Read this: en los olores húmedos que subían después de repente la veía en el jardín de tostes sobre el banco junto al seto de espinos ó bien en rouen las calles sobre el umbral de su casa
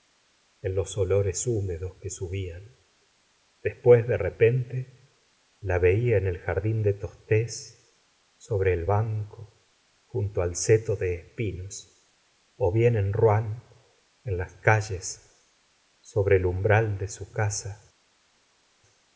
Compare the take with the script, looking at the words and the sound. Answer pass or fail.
fail